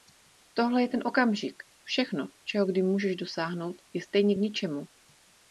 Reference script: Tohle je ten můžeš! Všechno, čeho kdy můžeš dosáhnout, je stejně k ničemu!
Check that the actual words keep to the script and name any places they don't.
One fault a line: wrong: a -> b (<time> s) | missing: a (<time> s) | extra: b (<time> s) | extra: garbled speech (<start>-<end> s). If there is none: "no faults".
wrong: můžeš -> okamžik (1.1 s)